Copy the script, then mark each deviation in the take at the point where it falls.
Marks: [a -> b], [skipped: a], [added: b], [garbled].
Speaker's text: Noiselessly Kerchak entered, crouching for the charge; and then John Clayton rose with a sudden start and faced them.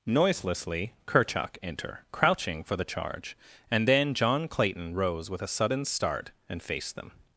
Noiselessly Kerchak [entered, -> enter] crouching for the charge; and then John Clayton rose with a sudden start and faced them.